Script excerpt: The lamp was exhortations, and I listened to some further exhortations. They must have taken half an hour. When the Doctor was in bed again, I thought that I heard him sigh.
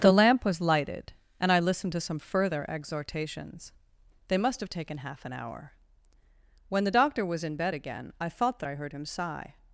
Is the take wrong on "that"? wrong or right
right